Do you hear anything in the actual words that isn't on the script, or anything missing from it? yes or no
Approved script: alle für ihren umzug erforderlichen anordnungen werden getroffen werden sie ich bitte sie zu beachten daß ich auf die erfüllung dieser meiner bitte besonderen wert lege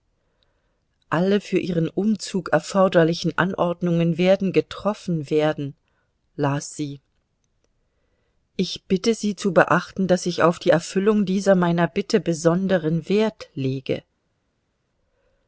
yes